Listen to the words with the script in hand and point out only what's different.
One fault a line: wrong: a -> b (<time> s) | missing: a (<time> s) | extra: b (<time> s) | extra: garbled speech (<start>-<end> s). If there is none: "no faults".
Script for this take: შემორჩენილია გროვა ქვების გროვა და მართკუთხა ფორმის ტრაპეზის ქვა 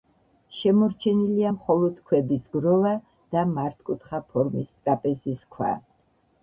wrong: გროვა -> მხოლოდ (1.5 s)